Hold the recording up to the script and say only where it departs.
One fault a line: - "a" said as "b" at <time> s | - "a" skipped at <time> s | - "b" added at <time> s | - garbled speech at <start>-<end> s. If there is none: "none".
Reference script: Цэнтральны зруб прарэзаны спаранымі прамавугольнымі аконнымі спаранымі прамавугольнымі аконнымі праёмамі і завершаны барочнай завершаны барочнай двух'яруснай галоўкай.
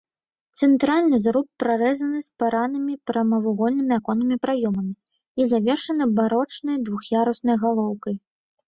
- "спаранымі прамавугольнымі аконнымі" skipped at 4.4 s
- "завершаны барочнай" skipped at 6.8 s